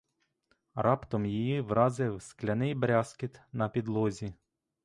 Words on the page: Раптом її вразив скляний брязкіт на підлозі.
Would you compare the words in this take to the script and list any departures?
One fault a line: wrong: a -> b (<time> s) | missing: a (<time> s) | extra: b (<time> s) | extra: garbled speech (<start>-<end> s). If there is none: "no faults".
no faults